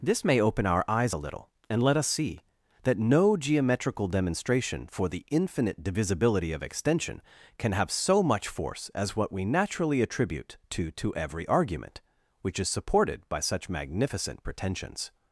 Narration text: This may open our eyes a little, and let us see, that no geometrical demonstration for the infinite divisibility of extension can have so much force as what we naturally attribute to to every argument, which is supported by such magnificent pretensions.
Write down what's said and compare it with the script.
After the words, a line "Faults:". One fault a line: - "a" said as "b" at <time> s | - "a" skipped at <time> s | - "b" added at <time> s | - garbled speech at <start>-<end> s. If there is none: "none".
This may open our eyes a little, and let us see, that no geometrical demonstration for the infinite divisibility of extension can have so much force as what we naturally attribute to to every argument, which is supported by such magnificent pretensions.
Faults:
none